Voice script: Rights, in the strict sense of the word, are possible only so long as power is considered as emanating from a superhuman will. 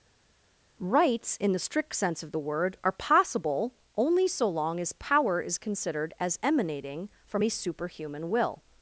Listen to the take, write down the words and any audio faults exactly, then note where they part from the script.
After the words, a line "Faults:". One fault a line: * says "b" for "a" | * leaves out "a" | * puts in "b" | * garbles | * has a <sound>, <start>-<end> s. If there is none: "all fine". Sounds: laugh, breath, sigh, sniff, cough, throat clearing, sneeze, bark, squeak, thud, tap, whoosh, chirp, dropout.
Rights, in the strict sense of the word, are possible only so long as power is considered as emanating from a superhuman will.
Faults:
all fine